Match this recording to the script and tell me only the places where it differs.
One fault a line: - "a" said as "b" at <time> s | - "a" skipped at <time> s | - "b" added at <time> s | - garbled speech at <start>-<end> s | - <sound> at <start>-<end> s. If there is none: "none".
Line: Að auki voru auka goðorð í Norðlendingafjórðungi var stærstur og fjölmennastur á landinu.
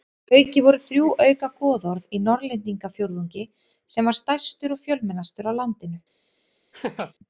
- "þrjú" added at 0.8 s
- "sem" added at 4.0 s
- laugh at 6.7-7.1 s